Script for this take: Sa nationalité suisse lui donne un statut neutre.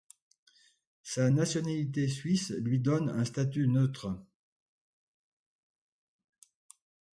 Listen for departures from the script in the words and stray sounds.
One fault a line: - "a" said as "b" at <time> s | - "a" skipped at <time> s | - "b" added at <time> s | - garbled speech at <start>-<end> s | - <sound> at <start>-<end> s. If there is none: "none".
none